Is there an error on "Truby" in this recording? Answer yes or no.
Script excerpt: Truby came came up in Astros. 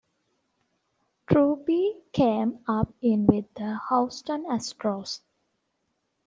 no